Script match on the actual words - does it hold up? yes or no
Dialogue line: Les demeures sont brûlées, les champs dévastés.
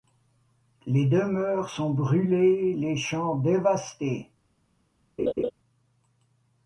yes